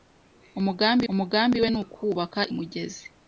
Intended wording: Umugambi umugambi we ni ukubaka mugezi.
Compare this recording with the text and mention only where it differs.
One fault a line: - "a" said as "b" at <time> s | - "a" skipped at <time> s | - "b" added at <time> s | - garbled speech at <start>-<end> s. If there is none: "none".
none